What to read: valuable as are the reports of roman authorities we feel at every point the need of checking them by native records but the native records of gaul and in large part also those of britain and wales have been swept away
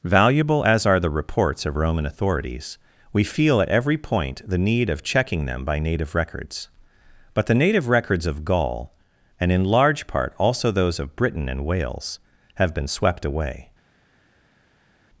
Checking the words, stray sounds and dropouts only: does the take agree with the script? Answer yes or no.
yes